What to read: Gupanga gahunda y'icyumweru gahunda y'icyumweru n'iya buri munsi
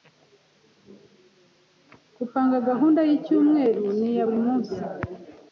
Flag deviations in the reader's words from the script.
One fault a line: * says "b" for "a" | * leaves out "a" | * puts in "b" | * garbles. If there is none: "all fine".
* leaves out "gahunda y'icyumweru"